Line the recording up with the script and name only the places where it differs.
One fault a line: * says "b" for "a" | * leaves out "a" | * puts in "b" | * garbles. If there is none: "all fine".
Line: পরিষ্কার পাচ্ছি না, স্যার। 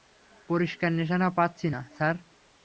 * puts in "নিশানা"